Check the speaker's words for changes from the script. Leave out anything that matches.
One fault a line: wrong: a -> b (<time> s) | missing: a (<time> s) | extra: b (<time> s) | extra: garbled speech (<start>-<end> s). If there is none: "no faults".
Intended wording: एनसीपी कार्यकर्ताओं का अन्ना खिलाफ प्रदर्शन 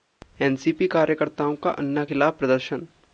no faults